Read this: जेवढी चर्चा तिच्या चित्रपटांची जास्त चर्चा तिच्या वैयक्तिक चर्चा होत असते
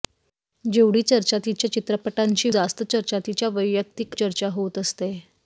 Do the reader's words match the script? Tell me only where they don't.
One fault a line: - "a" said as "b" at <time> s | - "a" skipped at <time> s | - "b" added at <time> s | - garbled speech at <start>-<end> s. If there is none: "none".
none